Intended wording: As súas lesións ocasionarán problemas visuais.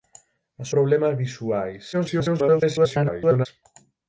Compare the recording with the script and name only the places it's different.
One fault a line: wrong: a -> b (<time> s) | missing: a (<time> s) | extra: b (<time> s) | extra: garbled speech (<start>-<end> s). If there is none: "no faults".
missing: súas lesións ocasionarán (0.7 s)
extra: garbled speech (1.9-3.5 s)